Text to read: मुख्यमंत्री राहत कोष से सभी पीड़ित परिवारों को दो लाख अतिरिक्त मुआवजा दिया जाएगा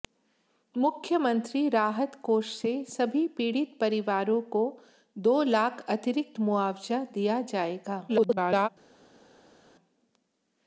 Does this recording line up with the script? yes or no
no